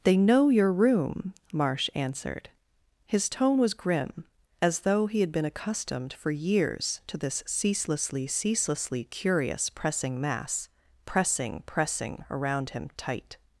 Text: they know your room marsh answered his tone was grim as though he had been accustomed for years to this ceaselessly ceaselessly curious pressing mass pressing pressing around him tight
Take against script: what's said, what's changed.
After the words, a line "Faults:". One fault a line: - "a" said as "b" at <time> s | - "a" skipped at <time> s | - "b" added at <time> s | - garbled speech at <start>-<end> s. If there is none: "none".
they know your room marsh answered his tone was grim as though he had been accustomed for years to this ceaselessly ceaselessly curious pressing mass pressing pressing around him tight
Faults:
none